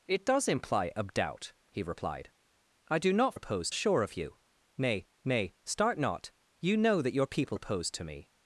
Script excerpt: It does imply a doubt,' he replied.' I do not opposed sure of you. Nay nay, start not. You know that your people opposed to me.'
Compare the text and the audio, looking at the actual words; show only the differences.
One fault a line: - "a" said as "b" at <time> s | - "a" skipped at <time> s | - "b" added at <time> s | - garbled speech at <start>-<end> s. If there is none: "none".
none